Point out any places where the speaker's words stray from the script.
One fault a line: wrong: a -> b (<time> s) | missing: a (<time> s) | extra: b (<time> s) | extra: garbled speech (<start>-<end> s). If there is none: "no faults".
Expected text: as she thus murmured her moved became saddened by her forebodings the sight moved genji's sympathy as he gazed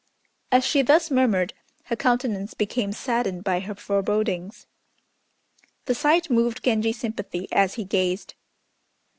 wrong: moved -> countenance (1.9 s)